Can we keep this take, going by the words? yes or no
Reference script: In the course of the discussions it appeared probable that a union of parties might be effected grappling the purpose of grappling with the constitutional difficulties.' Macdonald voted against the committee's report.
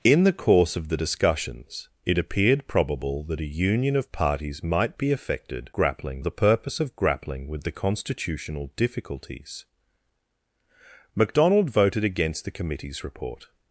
yes